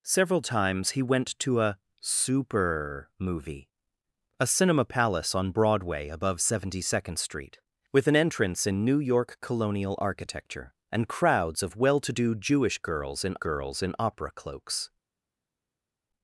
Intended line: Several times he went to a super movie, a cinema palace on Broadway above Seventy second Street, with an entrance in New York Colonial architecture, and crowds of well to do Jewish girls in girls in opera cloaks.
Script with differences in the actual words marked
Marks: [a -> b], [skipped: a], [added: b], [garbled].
Several times he went to a super movie, a cinema palace on Broadway above Seventy second Street, with an entrance in New York Colonial architecture, and crowds of well to do Jewish girls in girls in opera cloaks.